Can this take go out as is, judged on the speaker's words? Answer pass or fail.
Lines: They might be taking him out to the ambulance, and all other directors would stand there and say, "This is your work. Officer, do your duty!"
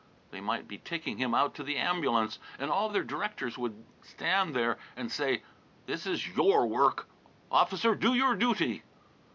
pass